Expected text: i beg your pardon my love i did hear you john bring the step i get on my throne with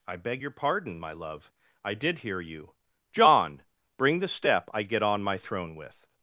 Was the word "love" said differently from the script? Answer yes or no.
no